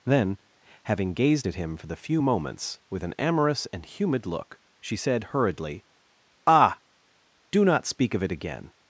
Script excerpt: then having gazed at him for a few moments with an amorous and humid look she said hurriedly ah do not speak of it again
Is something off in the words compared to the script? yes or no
yes